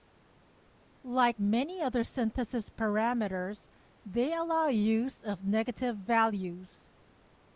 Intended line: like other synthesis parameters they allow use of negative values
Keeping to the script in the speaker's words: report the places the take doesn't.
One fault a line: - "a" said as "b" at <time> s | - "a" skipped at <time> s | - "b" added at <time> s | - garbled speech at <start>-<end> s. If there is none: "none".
- "many" added at 1.4 s